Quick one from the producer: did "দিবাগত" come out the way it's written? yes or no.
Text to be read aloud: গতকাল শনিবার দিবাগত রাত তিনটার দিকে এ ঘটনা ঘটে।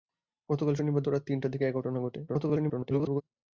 no